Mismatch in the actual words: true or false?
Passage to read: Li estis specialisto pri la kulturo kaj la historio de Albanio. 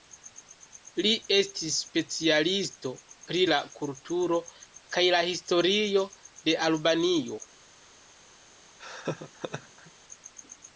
false